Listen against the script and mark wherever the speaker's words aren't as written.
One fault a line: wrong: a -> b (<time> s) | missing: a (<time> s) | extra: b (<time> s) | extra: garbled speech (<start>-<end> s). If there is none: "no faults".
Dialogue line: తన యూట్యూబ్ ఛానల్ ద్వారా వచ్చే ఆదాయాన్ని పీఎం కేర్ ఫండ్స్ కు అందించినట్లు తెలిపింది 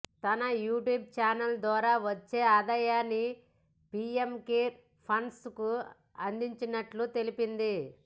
no faults